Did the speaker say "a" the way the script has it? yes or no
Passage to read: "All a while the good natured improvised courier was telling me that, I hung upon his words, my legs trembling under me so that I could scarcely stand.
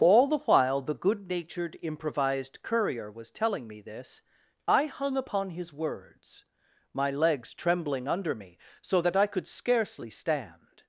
no